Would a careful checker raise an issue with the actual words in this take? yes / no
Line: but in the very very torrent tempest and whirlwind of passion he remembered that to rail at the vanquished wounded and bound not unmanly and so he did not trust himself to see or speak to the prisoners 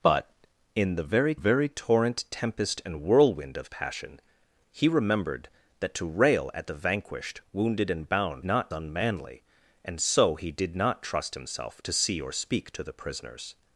no